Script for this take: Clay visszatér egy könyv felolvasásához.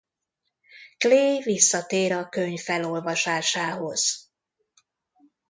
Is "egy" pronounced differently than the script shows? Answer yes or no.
yes